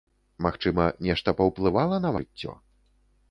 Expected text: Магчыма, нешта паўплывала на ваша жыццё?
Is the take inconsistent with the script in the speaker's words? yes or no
yes